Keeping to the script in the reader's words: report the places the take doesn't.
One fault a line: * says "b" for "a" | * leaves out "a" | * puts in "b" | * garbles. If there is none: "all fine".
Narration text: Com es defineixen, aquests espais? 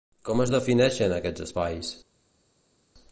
all fine